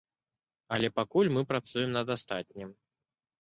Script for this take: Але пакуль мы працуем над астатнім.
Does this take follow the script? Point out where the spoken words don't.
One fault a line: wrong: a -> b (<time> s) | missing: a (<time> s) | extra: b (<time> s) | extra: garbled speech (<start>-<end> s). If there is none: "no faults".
no faults